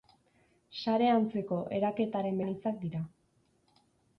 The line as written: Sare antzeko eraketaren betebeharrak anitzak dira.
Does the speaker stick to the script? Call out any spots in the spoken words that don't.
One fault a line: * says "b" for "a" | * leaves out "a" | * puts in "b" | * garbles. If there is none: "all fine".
* leaves out "betebeharrak"